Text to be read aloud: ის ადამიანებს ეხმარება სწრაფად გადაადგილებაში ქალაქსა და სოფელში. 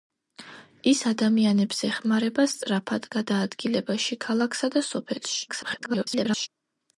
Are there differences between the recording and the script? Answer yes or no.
yes